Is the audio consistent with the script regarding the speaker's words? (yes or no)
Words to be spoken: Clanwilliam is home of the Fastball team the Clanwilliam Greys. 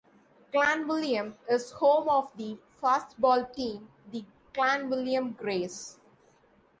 yes